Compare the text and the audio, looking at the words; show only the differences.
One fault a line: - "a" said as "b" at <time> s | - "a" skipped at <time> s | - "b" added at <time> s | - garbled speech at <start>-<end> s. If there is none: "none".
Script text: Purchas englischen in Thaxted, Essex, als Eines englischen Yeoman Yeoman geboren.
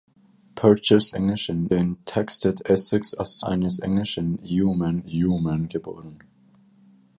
none